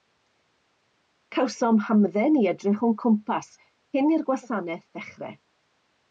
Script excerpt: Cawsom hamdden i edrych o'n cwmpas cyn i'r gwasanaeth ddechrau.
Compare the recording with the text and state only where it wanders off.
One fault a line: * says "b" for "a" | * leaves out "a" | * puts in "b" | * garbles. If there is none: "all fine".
all fine